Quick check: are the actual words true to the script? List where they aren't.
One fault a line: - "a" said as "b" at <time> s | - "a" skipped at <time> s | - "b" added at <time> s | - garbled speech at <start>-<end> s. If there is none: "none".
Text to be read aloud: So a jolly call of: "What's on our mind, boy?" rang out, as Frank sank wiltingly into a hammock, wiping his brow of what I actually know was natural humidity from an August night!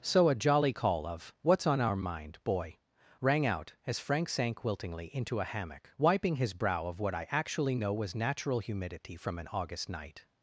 none